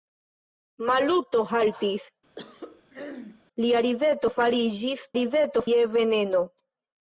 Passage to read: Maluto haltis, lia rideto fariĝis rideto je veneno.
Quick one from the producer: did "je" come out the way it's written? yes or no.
yes